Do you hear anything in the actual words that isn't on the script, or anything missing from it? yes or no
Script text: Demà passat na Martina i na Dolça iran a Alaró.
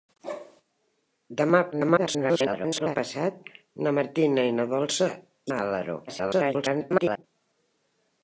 yes